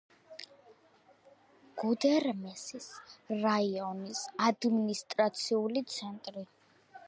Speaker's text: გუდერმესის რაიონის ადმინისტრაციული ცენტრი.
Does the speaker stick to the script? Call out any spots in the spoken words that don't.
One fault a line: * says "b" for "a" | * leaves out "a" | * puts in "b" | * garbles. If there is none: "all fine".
all fine